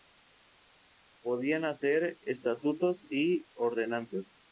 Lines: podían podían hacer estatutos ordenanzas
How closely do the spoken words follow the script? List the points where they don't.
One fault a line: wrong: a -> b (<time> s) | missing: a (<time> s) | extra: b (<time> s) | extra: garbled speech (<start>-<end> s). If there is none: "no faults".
missing: podían (1.6 s)
extra: y (3.1 s)